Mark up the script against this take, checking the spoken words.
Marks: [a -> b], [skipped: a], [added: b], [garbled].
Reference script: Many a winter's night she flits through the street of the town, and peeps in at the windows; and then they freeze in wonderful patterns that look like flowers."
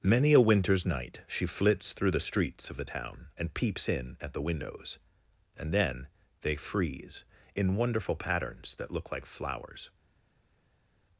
Many a winter's night she flits through the [street -> streets] of the town, and peeps in at the windows; and then they freeze in wonderful patterns that look like flowers."